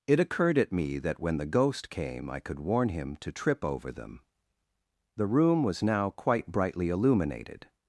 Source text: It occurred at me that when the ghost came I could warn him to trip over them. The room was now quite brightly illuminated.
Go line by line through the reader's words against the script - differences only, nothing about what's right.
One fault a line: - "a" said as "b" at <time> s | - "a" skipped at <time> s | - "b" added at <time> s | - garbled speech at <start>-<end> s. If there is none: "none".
none